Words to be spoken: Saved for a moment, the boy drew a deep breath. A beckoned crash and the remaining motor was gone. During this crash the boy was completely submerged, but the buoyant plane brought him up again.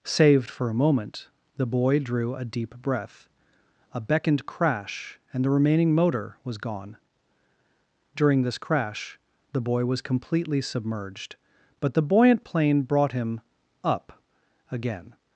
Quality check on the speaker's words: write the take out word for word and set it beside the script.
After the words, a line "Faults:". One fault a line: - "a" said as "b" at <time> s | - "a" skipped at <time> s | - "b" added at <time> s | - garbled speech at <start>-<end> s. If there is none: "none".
Saved for a moment, the boy drew a deep breath. A beckoned crash and the remaining motor was gone. During this crash the boy was completely submerged, but the buoyant plane brought him up again.
Faults:
none